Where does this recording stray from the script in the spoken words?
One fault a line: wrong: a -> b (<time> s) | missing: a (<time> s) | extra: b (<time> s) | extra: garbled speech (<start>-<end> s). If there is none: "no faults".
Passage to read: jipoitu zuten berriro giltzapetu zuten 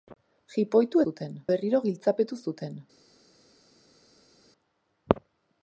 no faults